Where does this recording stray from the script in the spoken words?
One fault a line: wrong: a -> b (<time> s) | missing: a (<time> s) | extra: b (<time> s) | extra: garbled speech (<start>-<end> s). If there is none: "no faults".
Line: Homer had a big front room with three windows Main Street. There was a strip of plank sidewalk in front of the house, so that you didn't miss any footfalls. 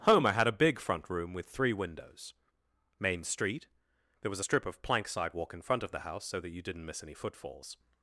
no faults